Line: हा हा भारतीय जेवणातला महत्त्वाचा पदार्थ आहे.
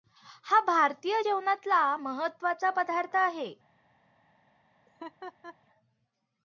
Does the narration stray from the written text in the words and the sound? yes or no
yes